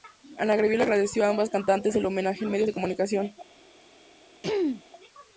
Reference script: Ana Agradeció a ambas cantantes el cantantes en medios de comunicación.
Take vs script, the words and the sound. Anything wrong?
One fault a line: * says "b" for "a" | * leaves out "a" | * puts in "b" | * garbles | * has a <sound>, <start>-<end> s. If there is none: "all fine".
* puts in "Gabriel"
* says "homenaje" for "cantantes"
* has a throat clearing, 4.4-4.8 s